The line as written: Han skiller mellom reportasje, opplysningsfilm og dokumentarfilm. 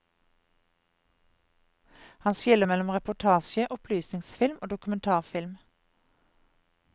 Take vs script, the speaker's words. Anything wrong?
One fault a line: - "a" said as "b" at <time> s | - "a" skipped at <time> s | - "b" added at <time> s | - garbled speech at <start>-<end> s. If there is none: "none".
none